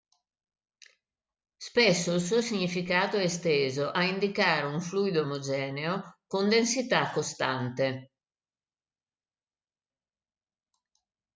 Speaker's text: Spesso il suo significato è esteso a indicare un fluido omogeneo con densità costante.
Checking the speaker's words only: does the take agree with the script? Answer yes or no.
yes